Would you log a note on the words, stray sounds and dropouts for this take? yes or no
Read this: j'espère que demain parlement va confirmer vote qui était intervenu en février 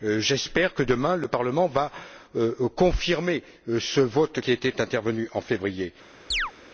yes